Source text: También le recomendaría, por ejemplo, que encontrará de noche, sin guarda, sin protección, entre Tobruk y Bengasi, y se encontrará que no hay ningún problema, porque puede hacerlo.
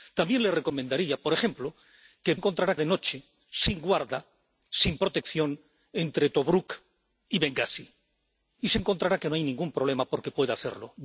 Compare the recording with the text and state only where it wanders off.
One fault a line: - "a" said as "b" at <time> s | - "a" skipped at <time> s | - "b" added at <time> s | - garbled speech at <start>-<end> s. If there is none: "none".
none